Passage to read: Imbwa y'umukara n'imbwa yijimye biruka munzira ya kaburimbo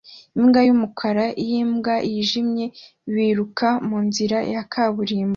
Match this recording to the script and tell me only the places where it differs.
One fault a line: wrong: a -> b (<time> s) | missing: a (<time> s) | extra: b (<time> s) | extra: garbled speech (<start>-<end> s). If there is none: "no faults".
no faults